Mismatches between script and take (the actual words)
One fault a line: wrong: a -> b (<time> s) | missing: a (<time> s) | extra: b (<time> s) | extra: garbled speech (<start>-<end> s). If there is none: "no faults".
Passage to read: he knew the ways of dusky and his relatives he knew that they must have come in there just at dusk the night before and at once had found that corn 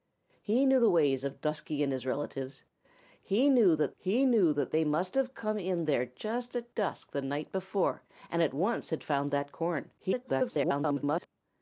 extra: he knew that (4.0 s)
extra: garbled speech (10.0-11.3 s)